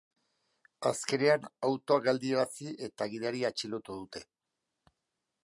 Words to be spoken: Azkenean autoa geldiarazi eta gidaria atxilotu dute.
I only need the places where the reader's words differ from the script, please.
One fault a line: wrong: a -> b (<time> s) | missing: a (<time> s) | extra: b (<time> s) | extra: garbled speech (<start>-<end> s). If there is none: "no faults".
no faults